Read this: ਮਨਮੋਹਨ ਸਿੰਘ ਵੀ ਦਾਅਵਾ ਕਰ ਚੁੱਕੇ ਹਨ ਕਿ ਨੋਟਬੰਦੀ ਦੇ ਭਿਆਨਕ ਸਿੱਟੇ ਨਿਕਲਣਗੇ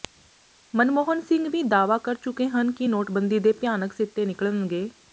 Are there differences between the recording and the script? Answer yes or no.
no